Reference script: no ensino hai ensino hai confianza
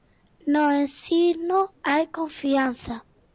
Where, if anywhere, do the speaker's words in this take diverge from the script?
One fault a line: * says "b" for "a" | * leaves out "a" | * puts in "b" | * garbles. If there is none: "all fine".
* leaves out "ensino hai"